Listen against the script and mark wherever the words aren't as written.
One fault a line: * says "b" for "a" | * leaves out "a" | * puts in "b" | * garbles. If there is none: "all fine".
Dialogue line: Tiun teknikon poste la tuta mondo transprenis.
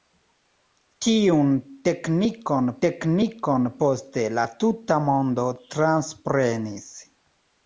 * puts in "teknikon"